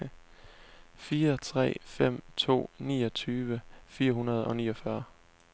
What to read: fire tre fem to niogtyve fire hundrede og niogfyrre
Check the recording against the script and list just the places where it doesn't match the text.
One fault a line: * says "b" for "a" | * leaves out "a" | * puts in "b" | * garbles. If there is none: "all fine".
all fine